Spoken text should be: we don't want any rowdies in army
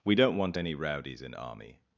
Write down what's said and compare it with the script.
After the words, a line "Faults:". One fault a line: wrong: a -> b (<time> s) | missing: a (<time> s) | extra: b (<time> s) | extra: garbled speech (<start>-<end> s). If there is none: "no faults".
we don't want any rowdies in army
Faults:
no faults